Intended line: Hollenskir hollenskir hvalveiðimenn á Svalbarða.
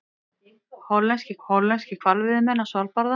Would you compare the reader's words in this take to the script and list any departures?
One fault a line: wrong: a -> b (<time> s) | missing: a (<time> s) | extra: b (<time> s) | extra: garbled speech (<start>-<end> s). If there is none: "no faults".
no faults